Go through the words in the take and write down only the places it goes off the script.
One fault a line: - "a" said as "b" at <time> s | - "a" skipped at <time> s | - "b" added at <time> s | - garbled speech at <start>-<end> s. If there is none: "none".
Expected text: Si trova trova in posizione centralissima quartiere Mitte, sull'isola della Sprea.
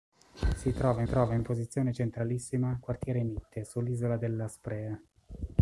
none